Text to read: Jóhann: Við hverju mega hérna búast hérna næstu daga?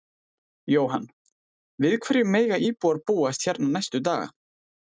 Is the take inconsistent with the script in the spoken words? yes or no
yes